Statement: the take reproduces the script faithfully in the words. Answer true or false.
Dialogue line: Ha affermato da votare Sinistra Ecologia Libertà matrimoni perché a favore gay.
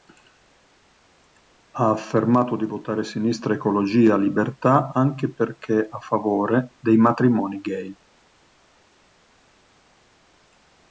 false